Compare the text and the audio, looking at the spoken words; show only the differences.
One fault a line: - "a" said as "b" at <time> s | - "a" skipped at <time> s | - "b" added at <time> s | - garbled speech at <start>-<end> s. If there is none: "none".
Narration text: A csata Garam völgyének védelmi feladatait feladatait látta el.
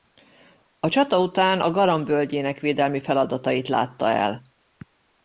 - "után a" added at 1.2 s
- "feladatait" skipped at 3.7 s